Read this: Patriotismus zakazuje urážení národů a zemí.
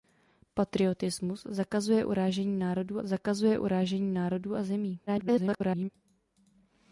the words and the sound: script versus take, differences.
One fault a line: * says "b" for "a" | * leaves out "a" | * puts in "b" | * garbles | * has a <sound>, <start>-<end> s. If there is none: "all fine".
* puts in "zakazuje urážení národů"
* garbles